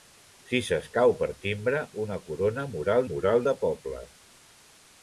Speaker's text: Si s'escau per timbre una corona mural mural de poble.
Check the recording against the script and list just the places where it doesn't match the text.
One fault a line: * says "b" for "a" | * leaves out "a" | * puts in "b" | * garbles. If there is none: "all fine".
all fine